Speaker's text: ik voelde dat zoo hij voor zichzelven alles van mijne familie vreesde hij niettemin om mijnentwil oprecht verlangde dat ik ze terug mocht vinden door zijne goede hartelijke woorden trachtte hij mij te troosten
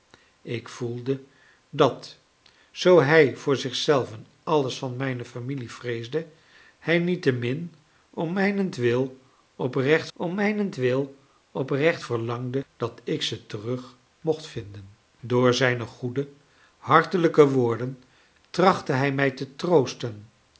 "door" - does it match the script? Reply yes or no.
yes